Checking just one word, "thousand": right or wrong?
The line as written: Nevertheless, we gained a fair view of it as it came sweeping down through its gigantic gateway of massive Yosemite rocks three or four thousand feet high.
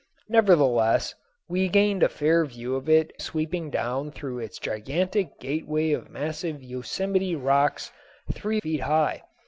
wrong